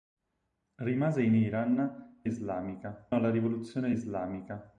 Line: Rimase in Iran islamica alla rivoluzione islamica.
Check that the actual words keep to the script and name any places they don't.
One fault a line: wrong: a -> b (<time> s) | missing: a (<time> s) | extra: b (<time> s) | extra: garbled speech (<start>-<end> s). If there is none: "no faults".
no faults